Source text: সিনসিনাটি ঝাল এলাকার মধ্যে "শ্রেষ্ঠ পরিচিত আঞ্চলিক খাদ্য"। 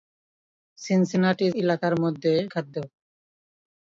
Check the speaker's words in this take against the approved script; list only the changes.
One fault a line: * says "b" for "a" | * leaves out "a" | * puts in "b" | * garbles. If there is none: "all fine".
* leaves out "ঝাল"
* leaves out "শ্রেষ্ঠ পরিচিত আঞ্চলিক"